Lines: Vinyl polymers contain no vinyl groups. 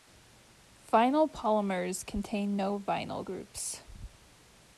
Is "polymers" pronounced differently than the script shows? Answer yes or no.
no